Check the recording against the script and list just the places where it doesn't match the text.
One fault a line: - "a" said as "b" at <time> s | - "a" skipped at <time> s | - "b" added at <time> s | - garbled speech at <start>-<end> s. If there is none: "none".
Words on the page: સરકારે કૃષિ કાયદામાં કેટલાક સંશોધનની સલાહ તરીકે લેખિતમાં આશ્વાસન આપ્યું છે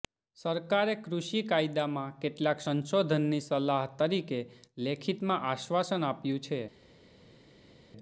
none